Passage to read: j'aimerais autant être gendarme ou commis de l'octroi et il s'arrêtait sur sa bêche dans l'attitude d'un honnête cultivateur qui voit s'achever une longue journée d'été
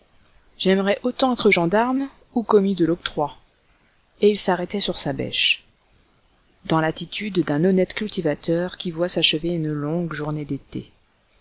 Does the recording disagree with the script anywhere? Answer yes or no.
no